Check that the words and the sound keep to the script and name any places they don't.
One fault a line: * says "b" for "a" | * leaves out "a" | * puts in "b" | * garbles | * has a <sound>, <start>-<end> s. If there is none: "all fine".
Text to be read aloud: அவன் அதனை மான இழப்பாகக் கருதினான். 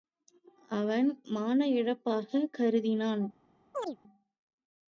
* leaves out "அதனை"
* has a chirp, 3.7-4.0 s